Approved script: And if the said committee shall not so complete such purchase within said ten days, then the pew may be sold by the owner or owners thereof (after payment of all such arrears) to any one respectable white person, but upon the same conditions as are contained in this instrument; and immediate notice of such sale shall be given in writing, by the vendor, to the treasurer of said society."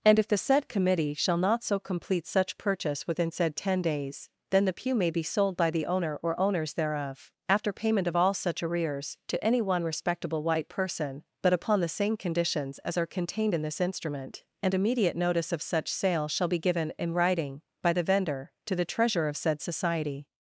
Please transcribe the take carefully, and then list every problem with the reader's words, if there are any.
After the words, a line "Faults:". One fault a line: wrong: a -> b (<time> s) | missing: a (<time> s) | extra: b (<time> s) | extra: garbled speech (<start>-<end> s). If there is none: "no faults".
And if the said committee shall not so complete such purchase within said ten days, then the pew may be sold by the owner or owners thereof (after payment of all such arrears) to any one respectable white person, but upon the same conditions as are contained in this instrument; and immediate notice of such sale shall be given in writing, by the vendor, to the treasurer of said society."
Faults:
no faults